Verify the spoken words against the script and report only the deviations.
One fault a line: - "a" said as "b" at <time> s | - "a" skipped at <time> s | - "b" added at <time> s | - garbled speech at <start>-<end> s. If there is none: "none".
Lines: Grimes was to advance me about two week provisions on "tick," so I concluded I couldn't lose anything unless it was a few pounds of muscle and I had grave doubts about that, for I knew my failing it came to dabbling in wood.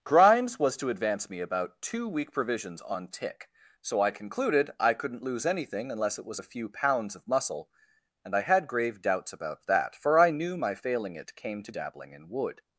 none